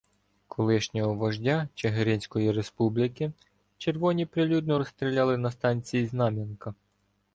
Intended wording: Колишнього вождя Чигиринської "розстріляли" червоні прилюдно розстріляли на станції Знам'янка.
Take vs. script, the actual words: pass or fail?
fail